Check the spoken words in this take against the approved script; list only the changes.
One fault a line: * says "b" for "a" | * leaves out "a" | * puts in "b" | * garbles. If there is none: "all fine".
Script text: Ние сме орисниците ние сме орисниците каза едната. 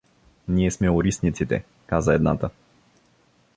* leaves out "ние сме орисниците"